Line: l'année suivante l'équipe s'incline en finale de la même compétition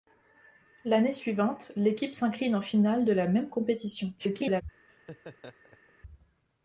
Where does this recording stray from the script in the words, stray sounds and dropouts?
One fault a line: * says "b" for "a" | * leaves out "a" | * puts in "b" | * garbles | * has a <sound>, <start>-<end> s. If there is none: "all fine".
* garbles
* has a laugh, 4.9-5.9 s